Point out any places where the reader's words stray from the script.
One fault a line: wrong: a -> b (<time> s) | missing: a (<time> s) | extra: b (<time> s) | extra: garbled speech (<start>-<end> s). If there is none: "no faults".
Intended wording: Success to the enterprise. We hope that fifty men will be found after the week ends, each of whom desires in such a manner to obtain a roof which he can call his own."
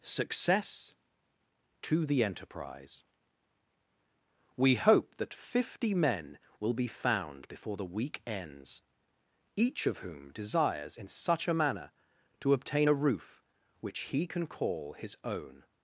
wrong: after -> before (7.5 s)